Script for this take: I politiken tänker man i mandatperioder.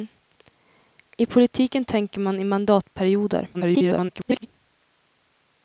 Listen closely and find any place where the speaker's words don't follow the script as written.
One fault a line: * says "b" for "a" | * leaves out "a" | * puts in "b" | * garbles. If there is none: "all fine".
* garbles